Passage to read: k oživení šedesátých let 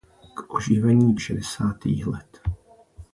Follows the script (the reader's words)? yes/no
yes